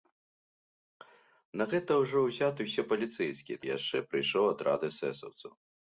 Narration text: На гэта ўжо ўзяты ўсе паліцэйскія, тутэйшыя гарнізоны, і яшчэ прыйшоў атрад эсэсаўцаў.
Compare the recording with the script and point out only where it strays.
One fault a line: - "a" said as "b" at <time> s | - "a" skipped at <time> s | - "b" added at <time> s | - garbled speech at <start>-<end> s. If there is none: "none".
- "тутэйшыя гарнізоны" skipped at 3.6 s